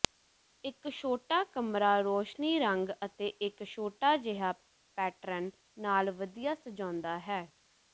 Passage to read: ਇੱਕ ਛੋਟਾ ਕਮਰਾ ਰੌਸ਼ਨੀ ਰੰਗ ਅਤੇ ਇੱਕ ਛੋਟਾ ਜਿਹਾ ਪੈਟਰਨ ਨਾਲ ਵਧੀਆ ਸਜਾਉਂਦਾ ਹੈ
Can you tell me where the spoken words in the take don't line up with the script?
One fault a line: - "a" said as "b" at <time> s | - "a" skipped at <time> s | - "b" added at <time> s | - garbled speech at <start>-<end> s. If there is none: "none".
none